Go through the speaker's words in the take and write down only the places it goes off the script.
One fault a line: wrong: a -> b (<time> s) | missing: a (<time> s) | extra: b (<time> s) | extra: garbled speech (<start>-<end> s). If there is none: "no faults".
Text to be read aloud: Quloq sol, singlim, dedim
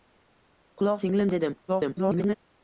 missing: sol (1.1 s)
extra: garbled speech (1.7-2.3 s)